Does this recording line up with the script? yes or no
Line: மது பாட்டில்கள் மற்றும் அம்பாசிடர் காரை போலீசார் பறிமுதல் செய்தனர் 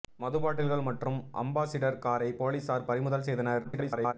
no